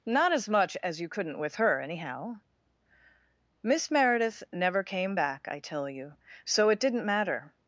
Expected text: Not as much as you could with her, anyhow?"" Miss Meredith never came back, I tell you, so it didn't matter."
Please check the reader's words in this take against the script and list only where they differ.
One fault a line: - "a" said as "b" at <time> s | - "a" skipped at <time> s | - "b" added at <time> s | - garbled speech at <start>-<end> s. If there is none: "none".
- "could" said as "couldn't" at 1.1 s